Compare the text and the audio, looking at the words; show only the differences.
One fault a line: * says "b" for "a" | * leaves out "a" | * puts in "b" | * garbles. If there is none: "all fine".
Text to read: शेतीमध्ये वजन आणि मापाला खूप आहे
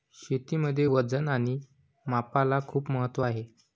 * puts in "महत्त्व"